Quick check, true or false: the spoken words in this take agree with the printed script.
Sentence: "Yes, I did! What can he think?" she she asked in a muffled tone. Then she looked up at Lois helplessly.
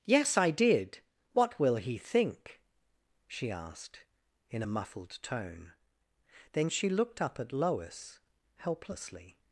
false